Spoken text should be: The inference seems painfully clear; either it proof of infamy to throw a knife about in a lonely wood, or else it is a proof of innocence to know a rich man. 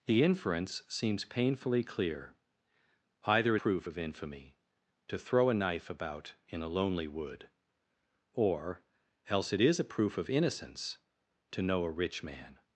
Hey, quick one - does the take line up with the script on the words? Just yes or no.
yes